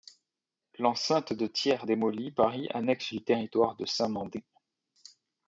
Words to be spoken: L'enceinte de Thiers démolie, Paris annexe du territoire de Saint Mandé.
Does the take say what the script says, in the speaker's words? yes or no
yes